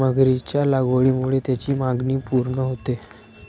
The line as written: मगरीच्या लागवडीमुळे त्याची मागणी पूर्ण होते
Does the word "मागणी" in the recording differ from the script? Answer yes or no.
no